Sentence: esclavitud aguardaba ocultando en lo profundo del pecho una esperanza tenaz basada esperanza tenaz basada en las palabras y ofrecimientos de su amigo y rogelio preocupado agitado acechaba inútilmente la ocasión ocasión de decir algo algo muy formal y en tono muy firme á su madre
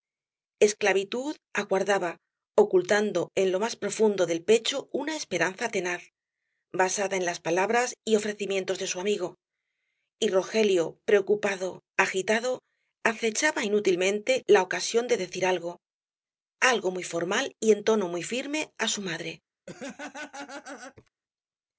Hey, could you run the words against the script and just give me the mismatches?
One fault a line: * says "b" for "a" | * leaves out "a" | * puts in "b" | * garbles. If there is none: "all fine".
* puts in "más"
* leaves out "esperanza tenaz basada"
* leaves out "ocasión"